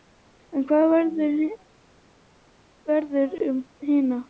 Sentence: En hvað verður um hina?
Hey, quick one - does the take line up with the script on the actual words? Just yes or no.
yes